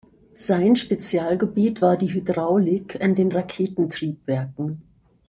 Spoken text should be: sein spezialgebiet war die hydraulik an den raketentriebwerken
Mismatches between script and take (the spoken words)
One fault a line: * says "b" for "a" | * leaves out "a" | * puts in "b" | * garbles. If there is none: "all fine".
all fine